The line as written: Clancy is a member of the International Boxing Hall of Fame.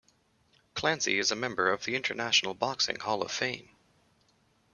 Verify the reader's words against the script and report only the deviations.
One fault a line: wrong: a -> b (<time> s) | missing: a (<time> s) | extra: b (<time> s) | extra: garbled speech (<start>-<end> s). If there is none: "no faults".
no faults